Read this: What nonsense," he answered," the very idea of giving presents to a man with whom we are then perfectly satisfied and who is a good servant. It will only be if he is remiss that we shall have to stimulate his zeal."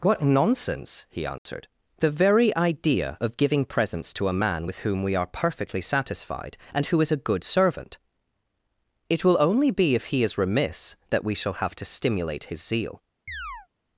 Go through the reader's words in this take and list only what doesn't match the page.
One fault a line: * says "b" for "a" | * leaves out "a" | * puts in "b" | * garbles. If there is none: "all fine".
* leaves out "then"